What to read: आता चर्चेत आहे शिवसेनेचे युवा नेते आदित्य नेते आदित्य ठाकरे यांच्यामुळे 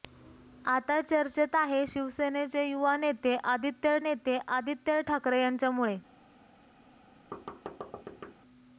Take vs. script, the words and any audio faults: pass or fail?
fail